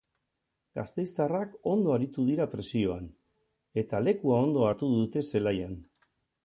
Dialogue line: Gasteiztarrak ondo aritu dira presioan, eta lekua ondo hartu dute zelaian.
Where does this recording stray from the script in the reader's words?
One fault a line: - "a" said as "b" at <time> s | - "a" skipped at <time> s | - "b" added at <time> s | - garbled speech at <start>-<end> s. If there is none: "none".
none